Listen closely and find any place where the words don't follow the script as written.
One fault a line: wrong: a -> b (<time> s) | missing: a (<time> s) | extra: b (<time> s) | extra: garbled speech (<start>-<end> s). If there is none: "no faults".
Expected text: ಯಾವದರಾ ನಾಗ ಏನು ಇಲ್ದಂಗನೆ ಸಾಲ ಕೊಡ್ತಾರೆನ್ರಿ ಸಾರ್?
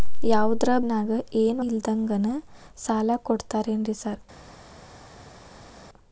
no faults